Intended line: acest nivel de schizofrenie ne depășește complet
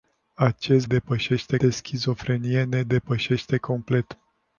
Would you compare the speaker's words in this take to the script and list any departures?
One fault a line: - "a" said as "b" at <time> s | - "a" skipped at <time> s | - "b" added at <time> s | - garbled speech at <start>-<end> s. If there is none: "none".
- "nivel" said as "depășește" at 0.8 s